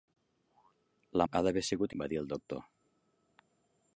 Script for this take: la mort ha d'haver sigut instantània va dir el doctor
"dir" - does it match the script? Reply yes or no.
yes